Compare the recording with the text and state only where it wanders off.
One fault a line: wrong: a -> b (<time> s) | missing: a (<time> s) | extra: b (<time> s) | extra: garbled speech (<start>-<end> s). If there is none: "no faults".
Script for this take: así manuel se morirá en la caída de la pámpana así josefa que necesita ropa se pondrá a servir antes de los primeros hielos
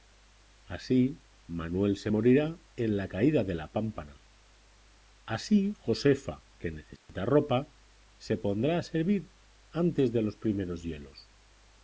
no faults